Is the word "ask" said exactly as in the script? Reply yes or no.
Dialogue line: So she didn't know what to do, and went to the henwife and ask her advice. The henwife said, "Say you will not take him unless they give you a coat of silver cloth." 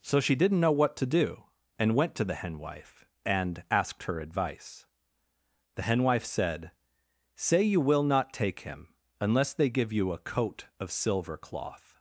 no